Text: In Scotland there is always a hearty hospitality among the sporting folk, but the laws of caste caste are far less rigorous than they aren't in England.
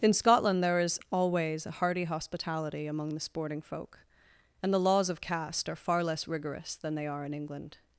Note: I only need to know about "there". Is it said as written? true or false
true